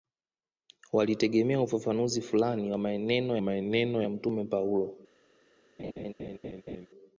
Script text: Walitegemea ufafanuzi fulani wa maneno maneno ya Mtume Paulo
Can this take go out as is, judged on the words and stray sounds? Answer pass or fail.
fail